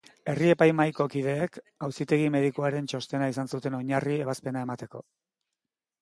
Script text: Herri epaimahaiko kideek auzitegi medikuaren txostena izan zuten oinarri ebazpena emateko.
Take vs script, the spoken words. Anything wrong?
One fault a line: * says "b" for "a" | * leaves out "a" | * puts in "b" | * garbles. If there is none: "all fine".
all fine